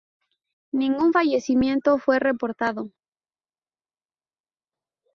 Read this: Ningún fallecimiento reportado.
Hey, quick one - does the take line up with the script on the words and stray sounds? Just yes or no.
no